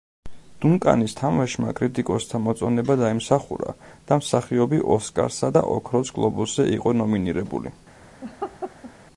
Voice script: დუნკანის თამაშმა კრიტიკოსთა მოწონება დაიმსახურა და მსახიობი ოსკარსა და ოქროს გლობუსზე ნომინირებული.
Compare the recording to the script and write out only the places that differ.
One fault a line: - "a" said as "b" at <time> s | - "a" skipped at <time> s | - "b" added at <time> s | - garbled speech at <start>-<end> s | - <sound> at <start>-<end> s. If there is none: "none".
- "იყო" added at 6.8 s
- laugh at 8.2-8.9 s